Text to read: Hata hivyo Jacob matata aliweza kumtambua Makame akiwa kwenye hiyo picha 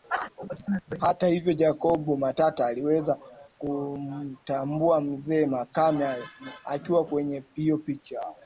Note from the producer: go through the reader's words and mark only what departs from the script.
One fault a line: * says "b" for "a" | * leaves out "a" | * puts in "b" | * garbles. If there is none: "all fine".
* puts in "mzee"